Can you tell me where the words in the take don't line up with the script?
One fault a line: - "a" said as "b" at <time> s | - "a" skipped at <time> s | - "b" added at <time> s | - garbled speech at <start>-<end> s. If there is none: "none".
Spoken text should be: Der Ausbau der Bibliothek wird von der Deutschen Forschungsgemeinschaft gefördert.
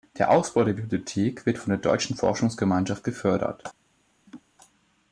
none